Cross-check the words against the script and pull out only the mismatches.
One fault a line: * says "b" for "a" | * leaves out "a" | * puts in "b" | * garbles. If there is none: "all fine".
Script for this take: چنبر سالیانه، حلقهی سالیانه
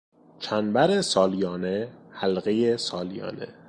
all fine